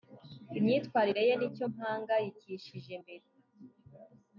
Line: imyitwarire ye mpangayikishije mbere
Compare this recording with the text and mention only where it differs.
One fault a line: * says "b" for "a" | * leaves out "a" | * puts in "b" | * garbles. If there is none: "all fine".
* puts in "nicyo"